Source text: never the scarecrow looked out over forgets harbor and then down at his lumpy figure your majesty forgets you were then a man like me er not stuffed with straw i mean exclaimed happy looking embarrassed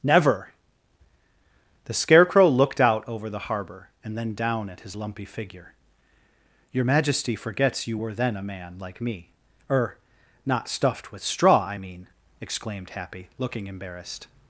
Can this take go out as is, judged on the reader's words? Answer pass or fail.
fail